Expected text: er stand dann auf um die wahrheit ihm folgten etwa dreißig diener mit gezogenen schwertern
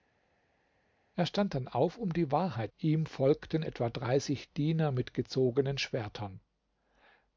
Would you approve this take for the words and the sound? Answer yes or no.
yes